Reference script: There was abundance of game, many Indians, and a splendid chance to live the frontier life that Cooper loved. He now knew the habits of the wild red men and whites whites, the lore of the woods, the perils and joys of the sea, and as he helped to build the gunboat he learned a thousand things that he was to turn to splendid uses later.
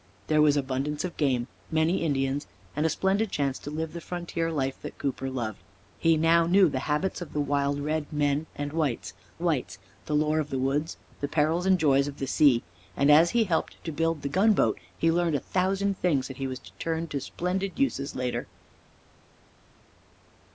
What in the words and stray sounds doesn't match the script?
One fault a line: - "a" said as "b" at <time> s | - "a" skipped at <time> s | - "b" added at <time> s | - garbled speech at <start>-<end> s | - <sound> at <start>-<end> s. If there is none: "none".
none